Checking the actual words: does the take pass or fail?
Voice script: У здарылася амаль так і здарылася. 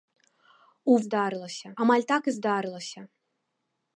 pass